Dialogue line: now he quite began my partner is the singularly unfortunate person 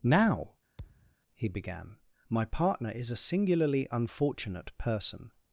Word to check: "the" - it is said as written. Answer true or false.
false